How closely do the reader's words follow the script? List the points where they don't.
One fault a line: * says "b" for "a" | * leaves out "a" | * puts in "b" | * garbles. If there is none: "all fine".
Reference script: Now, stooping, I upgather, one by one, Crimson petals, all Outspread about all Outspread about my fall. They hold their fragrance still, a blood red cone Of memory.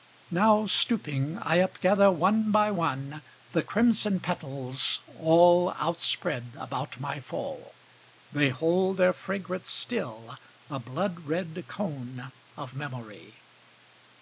* puts in "The"
* leaves out "all Outspread about"